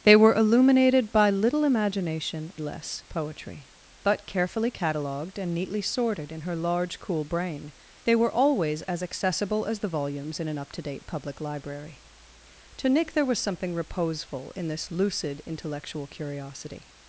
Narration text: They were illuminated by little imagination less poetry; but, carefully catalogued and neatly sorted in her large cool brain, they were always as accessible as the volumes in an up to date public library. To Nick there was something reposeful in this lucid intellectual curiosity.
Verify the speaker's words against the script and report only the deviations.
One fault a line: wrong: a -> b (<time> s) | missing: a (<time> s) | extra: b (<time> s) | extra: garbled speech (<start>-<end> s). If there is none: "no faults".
no faults